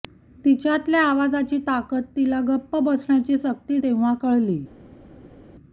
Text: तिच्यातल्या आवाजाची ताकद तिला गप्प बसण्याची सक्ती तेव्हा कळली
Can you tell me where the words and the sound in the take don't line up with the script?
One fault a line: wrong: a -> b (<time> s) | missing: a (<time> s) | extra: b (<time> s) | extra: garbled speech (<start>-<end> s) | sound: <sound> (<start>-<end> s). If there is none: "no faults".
no faults